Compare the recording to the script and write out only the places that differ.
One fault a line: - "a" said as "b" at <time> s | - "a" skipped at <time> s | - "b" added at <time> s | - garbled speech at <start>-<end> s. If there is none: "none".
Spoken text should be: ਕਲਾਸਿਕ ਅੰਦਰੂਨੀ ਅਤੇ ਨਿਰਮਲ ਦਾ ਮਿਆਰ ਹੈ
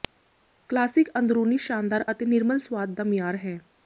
- "ਸ਼ਾਨਦਾਰ" added at 1.6 s
- "ਸੁਆਦ" added at 2.6 s